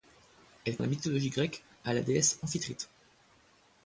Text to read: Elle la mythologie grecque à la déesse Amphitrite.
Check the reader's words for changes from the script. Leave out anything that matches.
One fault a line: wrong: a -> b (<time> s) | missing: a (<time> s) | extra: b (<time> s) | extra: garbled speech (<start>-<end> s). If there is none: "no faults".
no faults